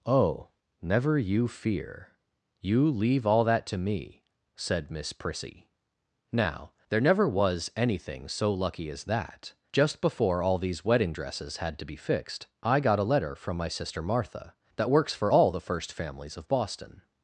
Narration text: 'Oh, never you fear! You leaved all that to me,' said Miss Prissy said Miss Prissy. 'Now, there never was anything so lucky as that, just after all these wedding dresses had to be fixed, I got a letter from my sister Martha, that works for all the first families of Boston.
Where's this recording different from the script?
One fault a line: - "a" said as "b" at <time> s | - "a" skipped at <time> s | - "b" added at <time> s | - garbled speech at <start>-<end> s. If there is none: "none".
- "leaved" said as "leave" at 2.9 s
- "said Miss Prissy" skipped at 5.7 s
- "after" said as "before" at 10.0 s